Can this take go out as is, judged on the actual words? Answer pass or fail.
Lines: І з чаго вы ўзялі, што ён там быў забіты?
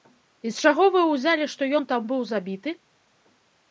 pass